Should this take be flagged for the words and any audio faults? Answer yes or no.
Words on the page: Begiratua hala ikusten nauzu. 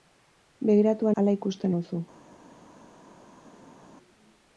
no